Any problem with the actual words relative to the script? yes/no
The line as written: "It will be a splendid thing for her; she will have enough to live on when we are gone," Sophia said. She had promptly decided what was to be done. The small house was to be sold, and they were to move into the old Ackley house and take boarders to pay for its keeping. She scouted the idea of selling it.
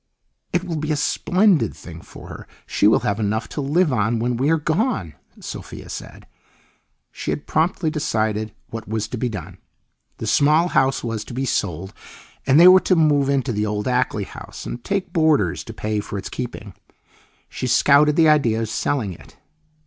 no